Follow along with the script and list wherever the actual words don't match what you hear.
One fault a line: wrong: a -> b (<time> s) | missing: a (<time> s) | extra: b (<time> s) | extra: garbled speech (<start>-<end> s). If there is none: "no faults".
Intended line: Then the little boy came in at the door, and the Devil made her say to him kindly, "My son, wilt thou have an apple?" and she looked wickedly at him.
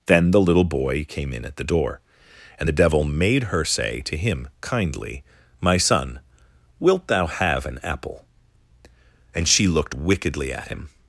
no faults